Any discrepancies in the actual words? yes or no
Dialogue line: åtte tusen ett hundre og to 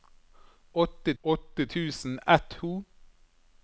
yes